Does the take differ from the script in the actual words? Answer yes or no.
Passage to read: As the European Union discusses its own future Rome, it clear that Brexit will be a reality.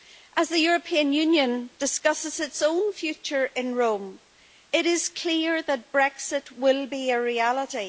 yes